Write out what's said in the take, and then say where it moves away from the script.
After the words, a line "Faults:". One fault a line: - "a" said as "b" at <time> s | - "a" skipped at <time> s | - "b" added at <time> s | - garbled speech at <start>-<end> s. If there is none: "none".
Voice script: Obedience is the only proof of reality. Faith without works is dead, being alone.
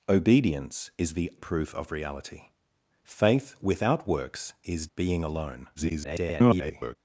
Obedience is the proof of reality. Faith without works is being alone. [garbled]
Faults:
- "only" skipped at 1.3 s
- "dead" skipped at 4.9 s
- garbled speech at 5.8-7.0 s